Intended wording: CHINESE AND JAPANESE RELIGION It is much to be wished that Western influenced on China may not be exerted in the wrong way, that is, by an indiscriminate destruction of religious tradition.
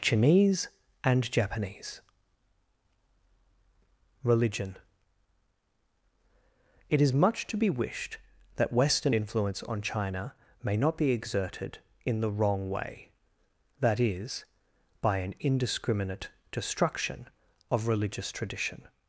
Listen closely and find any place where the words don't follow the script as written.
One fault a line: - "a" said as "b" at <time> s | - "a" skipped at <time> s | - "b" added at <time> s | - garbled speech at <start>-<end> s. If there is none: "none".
- "influenced" said as "influence" at 9.1 s